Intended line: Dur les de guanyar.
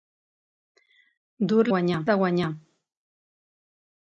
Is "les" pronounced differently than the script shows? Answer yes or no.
yes